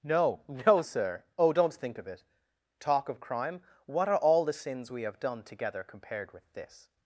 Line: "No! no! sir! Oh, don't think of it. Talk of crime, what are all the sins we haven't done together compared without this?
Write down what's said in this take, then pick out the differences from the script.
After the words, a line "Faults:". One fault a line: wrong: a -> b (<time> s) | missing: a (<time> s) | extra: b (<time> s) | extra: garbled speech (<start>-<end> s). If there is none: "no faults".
"No! no! sir! Oh, don't think of it. Talk of crime, what are all the sins we have done together compared with this?
Faults:
wrong: haven't -> have (5.0 s)
wrong: without -> with (6.3 s)